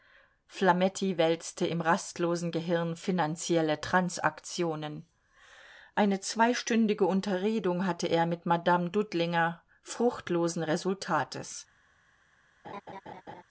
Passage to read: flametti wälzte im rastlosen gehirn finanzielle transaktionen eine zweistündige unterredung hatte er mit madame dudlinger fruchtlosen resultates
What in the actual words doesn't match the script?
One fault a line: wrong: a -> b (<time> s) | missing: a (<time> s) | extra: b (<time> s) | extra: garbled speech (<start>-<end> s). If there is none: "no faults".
no faults